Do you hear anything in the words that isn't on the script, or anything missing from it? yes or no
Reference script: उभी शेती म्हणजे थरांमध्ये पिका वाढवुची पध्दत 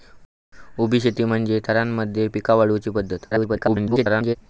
yes